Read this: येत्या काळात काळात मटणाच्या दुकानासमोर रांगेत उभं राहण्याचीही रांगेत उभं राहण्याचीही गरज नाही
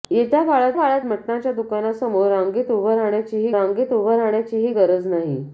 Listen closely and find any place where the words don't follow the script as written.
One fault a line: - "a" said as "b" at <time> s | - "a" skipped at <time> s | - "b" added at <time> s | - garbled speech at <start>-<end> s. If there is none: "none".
none